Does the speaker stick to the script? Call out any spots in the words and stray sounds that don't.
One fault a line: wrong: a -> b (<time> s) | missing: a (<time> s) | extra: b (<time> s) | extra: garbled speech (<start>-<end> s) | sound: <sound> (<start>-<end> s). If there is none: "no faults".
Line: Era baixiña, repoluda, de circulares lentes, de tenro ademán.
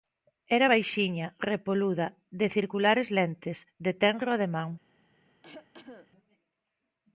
sound: cough (5.4-6.1 s)